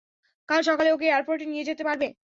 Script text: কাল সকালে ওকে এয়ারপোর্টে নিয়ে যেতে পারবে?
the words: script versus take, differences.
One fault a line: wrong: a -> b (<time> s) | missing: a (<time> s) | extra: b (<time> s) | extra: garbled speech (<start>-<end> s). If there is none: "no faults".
no faults